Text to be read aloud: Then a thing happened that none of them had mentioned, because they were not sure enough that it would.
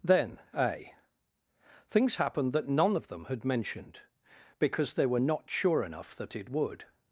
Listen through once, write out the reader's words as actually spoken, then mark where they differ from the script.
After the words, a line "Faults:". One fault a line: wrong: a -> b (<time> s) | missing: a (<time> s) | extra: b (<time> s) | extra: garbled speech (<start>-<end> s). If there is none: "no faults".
Then a things happened that none of them had mentioned, because they were not sure enough that it would.
Faults:
wrong: thing -> things (1.9 s)